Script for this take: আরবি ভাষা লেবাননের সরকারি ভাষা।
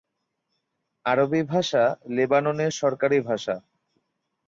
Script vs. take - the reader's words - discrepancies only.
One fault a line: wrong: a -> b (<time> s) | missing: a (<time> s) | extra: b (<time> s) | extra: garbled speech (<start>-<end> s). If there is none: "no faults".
no faults